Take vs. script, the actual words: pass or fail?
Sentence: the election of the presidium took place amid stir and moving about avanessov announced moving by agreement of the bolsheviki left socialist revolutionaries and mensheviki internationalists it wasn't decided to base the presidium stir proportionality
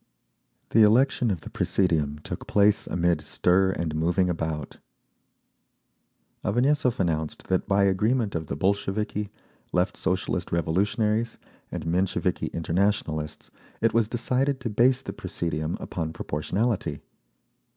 fail